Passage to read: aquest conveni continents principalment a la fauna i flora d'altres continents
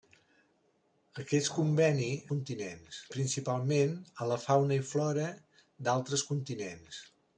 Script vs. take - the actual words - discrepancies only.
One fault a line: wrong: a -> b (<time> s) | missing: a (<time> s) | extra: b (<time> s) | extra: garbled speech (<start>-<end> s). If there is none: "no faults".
no faults